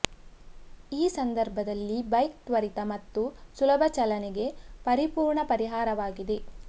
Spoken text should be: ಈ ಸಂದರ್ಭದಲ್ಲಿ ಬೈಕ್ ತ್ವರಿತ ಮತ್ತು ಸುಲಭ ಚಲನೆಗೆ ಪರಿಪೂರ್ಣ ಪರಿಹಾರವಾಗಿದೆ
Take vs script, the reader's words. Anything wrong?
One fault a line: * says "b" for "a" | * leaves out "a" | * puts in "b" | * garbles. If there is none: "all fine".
all fine